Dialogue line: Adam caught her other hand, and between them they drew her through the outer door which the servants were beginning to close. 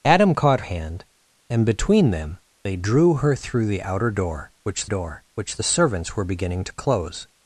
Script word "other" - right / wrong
wrong